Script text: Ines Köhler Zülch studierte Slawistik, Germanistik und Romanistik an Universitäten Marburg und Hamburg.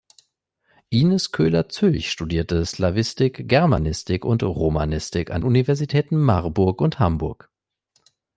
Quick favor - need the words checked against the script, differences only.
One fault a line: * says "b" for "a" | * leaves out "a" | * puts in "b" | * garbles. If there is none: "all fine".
all fine